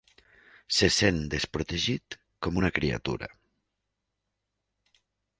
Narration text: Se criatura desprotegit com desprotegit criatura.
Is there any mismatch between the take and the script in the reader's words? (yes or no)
yes